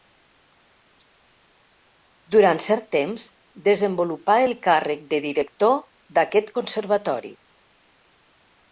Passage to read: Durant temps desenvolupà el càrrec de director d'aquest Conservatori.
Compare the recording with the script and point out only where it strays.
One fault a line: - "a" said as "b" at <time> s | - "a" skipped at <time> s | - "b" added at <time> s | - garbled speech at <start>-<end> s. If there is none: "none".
- "cert" added at 2.7 s